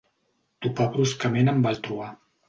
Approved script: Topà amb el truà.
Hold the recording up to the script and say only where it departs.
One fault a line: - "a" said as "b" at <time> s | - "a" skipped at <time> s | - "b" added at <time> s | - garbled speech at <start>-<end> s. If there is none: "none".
- "bruscament" added at 0.9 s